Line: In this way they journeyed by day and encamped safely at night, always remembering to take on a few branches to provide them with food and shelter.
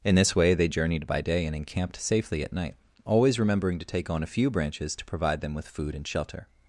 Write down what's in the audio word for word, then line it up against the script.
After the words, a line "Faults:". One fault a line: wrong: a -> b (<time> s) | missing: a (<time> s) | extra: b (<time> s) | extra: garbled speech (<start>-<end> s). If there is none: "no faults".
In this way they journeyed by day and encamped safely at night, always remembering to take on a few branches to provide them with food and shelter.
Faults:
no faults